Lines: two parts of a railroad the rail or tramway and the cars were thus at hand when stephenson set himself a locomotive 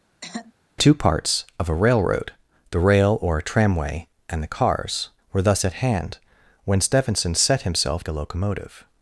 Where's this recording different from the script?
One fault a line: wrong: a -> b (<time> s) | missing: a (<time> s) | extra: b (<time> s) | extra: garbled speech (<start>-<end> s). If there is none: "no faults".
no faults